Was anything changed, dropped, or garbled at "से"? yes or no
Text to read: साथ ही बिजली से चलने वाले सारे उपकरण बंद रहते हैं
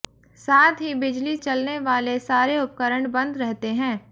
yes